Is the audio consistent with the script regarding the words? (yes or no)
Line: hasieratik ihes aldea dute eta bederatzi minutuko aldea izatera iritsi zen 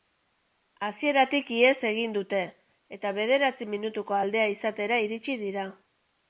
no